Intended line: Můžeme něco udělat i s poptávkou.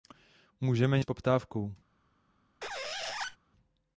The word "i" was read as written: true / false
false